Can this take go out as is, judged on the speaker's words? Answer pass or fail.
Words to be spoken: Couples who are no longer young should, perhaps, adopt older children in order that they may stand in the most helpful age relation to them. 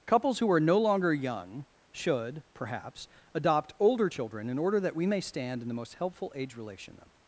fail